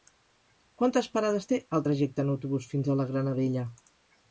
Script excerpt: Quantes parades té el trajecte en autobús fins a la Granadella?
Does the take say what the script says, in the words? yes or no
yes